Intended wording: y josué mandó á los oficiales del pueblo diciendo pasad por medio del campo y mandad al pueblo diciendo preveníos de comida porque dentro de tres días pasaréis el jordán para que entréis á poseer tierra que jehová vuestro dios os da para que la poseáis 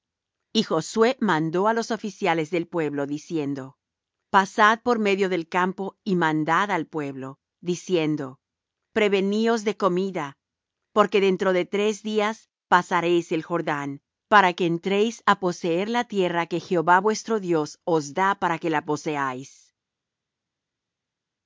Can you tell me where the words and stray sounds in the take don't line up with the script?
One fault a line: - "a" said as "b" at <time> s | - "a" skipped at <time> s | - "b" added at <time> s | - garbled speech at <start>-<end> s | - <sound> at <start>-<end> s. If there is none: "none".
- "la" added at 15.9 s